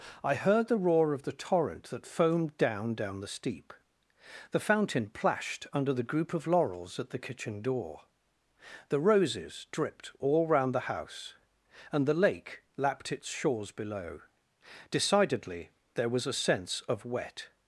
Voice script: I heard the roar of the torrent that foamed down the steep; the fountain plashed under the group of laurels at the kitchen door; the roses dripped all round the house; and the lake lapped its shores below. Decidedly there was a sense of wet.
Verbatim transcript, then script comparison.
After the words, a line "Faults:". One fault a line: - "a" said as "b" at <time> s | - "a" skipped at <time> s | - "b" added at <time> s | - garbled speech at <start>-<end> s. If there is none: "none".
I heard the roar of the torrent that foamed down down the steep; the fountain plashed under the group of laurels at the kitchen door; the roses dripped all round the house; and the lake lapped its shores below. Decidedly there was a sense of wet.
Faults:
- "down" added at 3.0 s